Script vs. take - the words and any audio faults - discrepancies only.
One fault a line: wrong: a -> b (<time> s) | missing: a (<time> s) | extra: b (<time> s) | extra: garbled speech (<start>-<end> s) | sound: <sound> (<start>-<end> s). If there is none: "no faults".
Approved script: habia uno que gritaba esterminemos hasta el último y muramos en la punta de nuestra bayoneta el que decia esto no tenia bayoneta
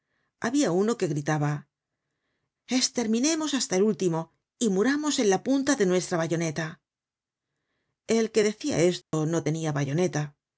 sound: dropout (9.0-9.1 s)